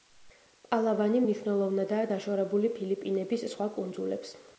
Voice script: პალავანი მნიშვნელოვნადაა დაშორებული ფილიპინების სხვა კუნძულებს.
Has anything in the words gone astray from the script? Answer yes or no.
no